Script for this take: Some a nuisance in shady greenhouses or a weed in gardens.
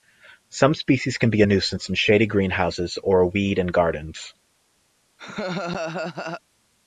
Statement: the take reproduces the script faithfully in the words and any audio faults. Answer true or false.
false